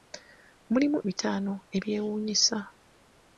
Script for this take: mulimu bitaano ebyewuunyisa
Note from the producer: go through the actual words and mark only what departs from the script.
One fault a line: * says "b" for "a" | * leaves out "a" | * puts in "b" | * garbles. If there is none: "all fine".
all fine